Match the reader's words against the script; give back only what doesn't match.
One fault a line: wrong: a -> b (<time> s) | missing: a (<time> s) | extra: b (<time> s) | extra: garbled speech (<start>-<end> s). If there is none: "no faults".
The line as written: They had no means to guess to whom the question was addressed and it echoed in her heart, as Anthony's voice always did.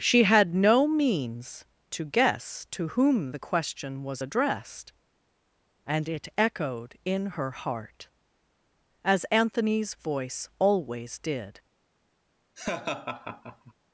wrong: They -> She (0.0 s)